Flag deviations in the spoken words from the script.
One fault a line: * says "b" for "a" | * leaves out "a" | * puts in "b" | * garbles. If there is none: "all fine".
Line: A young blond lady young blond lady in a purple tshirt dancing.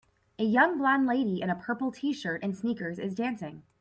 * leaves out "young blond lady"
* puts in "and sneakers is"